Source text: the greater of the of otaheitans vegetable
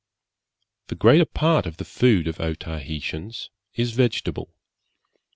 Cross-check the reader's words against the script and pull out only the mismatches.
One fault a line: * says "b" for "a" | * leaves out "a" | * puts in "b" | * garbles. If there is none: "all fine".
* puts in "part"
* puts in "food"
* puts in "is"